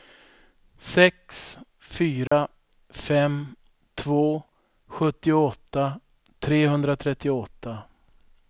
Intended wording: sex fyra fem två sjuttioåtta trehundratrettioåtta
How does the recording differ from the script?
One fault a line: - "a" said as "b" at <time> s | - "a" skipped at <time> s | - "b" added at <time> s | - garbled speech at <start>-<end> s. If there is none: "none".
none